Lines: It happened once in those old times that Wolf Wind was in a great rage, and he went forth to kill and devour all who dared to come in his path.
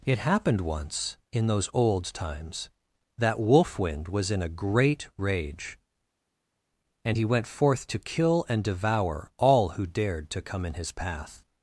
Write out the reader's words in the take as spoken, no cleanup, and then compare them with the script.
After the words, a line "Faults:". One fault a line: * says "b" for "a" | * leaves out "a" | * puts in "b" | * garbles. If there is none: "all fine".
It happened once in those old times that Wolf Wind was in a great rage, and he went forth to kill and devour all who dared to come in his path.
Faults:
all fine